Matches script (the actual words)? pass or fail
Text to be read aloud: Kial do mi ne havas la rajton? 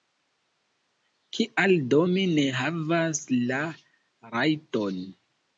pass